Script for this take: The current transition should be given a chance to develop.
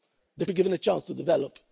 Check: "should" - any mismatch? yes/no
yes